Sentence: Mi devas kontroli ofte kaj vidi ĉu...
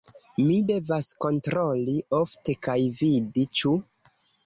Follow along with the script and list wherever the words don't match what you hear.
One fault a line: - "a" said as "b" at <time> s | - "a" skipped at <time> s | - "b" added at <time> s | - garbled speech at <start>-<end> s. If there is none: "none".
none